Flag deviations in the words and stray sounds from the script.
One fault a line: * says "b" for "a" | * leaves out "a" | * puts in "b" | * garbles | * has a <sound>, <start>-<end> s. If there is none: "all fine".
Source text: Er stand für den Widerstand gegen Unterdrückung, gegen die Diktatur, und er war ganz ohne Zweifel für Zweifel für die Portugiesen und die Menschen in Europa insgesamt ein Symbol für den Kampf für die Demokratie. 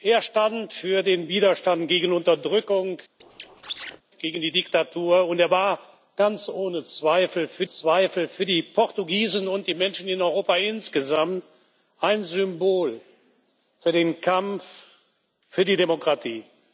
* has a squeak, 3.2-4.0 s